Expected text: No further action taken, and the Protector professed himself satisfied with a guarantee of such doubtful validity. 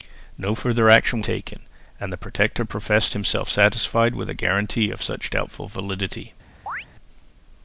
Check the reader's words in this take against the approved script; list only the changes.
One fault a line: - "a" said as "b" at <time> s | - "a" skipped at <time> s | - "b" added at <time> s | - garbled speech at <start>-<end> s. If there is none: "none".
none